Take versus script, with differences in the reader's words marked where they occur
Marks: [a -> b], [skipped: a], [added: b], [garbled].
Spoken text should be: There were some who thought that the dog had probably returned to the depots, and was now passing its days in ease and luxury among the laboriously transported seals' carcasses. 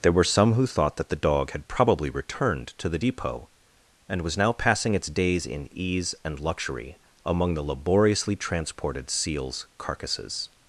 There were some who thought that the dog had probably returned to the [depots, -> depot] and was now passing its days in ease and luxury among the laboriously transported seals' carcasses.